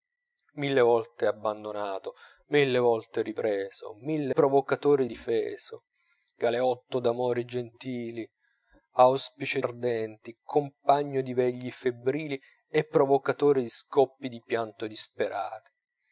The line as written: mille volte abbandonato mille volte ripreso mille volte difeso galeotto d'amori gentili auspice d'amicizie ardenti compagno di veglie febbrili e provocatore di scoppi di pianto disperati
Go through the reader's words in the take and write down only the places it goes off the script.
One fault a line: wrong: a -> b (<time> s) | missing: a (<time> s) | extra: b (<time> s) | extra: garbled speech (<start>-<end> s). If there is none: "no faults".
wrong: volte -> provocatore (4.3 s)
missing: d'amicizie (9.6 s)